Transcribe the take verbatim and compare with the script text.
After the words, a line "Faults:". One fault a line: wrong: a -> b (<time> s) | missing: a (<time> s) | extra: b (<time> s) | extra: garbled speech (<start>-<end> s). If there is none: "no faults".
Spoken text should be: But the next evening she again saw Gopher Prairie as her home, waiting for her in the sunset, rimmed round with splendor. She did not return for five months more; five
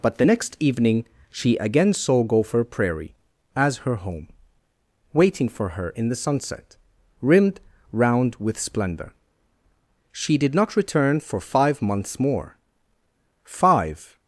But the next evening she again saw Gopher Prairie as her home, waiting for her in the sunset, rimmed round with splendor. She did not return for five months more; five
Faults:
no faults